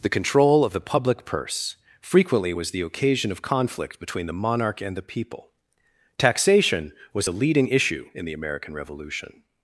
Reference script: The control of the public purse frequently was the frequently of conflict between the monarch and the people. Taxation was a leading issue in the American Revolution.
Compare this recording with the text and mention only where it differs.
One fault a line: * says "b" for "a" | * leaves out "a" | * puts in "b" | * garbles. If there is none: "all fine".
* says "occasion" for "frequently"